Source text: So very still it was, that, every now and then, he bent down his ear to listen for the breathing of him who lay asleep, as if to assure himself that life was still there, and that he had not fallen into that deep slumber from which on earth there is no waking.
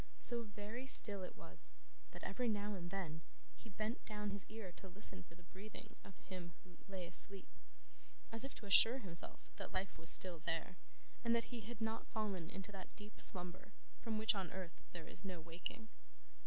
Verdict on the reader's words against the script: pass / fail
pass